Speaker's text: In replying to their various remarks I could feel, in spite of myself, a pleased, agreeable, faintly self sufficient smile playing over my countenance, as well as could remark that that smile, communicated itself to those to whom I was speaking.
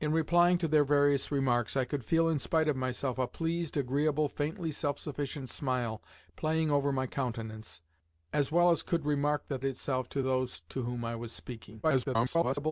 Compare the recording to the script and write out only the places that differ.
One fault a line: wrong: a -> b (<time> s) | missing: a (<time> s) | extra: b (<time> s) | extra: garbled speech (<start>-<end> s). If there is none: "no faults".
missing: that smile communicated (9.6 s)
extra: garbled speech (11.8-12.7 s)